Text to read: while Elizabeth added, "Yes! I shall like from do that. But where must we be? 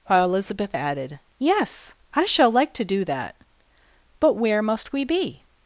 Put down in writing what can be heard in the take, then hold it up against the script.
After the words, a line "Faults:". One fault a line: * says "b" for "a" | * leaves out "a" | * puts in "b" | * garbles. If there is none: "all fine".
while Elizabeth added, "Yes! I shall like to do that. But where must we be?
Faults:
* says "to" for "from"